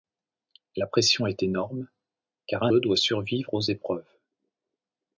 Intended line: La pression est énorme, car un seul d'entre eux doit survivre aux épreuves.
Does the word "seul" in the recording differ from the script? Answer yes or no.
yes